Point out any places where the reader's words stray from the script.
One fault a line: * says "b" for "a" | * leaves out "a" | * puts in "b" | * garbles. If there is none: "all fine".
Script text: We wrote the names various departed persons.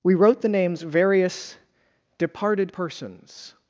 all fine